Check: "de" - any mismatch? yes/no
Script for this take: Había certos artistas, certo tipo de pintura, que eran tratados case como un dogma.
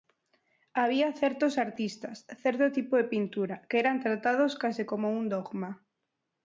no